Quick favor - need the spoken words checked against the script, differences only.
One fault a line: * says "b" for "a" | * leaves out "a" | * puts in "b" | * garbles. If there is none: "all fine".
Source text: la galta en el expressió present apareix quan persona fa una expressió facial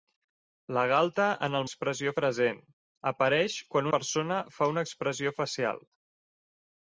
all fine